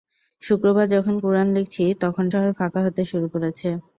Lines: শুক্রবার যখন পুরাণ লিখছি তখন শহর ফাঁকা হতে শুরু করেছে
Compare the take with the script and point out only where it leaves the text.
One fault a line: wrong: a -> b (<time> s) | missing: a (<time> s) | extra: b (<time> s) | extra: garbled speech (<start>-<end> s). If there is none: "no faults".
no faults